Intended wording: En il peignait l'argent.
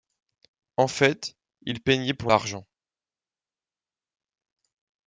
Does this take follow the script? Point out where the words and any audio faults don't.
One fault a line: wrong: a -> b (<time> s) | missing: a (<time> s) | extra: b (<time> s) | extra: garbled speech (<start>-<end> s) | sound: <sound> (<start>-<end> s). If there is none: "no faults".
extra: fait (0.9 s)
extra: pour (2.1 s)